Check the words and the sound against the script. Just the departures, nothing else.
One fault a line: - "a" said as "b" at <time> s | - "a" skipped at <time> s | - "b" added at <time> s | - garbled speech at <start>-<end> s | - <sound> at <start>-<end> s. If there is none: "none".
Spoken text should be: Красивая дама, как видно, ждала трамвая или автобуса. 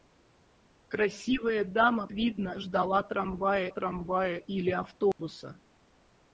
- "как" skipped at 2.1 s
- "трамвая" added at 3.7 s
- dropout at 5.1-5.2 s